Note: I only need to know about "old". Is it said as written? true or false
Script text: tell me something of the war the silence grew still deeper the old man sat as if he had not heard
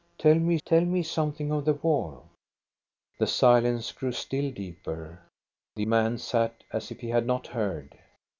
false